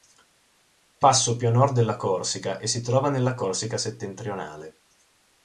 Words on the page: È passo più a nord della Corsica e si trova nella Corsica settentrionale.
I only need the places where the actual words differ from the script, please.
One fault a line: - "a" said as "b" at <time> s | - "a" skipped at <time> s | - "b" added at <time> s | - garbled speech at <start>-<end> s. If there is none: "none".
none